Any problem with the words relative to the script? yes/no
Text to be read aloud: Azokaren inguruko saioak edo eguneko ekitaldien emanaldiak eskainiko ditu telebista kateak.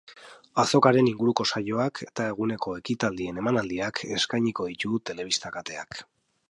yes